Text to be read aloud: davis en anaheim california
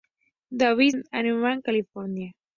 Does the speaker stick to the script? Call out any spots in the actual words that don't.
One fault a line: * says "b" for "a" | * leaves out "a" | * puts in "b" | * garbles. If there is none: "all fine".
all fine